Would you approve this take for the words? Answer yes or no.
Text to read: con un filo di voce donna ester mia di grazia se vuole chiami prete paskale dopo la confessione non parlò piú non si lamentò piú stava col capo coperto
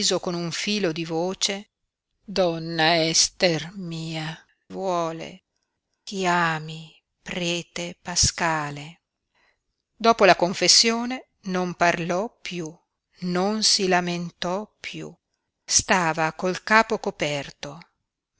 no